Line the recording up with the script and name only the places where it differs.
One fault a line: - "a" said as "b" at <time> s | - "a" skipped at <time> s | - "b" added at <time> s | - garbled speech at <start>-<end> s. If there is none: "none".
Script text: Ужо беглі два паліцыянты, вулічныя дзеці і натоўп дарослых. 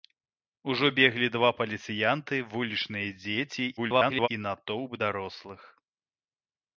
- garbled speech at 3.8-4.3 s